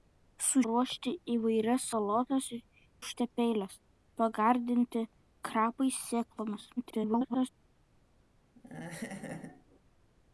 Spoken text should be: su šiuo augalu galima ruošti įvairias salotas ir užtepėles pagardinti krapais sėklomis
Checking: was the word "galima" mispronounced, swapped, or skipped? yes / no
yes